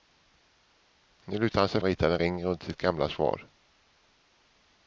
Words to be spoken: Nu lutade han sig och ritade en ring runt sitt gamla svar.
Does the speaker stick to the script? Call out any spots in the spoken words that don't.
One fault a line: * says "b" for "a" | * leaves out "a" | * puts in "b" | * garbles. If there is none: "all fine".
all fine